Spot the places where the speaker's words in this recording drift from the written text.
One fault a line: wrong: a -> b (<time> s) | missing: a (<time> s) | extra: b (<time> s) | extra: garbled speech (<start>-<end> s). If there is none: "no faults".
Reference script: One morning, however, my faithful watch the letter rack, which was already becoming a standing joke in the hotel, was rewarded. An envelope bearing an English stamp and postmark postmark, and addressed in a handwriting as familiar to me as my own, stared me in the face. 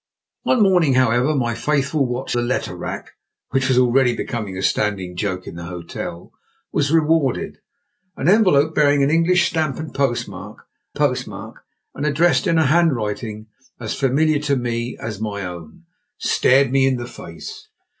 no faults